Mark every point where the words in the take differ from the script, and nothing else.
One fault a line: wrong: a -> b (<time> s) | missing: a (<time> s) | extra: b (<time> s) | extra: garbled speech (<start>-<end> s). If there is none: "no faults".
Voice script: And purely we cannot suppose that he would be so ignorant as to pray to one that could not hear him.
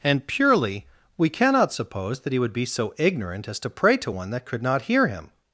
no faults